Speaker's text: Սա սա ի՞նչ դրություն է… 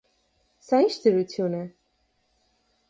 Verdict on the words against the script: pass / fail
fail